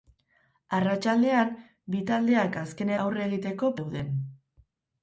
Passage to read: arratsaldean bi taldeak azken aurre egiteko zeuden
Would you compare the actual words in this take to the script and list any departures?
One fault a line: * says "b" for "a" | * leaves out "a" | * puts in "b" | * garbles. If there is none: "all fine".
all fine